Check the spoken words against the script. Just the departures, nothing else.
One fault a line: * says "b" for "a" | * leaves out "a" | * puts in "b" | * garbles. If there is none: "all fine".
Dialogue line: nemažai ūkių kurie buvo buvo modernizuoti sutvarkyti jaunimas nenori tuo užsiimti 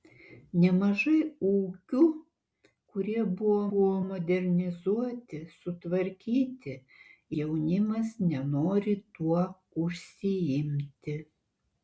all fine